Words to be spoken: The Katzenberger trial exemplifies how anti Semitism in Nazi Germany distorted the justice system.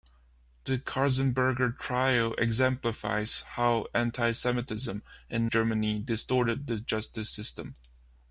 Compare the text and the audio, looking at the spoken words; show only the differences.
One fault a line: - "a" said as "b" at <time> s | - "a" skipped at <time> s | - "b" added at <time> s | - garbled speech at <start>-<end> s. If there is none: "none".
- "Nazi" skipped at 5.5 s